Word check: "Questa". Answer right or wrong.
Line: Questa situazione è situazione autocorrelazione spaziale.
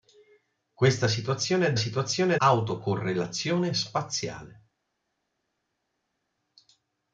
right